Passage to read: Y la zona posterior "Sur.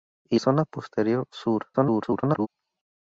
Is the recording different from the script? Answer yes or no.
yes